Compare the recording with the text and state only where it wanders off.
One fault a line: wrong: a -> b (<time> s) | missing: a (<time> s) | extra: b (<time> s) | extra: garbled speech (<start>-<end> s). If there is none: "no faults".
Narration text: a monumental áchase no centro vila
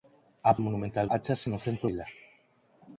no faults